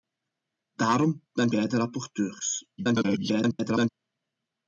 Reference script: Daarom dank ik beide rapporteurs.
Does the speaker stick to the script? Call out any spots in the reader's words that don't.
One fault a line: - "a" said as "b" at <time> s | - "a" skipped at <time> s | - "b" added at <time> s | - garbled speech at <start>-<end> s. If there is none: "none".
- "ik" skipped at 1.5 s
- garbled speech at 2.8-3.9 s